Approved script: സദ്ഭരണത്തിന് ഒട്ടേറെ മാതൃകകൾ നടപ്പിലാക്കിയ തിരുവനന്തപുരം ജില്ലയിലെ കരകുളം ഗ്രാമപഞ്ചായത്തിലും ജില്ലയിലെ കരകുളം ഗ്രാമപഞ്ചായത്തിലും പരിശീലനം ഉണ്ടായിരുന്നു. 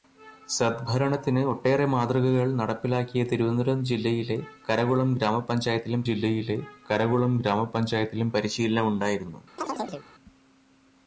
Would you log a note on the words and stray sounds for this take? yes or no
yes